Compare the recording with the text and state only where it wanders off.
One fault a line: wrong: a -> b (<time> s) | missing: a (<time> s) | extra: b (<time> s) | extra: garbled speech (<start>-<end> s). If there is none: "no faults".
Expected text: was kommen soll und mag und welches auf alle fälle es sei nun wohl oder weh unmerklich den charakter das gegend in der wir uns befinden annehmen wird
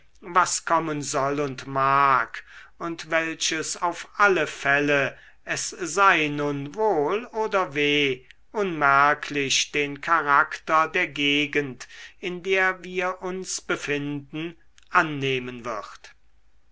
wrong: das -> der (10.9 s)